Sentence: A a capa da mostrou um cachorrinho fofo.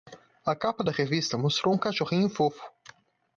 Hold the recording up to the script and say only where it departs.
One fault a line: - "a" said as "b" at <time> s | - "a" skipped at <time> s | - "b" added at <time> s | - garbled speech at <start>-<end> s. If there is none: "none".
- "a" skipped at 0.6 s
- "revista" added at 0.9 s